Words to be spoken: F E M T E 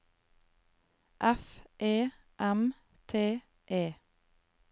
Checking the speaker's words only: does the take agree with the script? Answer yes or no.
yes